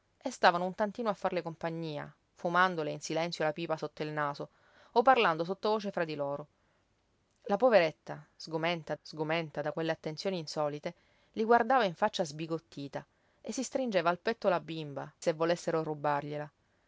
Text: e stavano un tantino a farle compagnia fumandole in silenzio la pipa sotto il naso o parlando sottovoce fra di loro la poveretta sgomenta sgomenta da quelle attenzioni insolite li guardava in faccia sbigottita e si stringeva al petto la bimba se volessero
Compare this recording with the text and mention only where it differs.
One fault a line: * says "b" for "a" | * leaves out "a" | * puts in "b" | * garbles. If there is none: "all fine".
all fine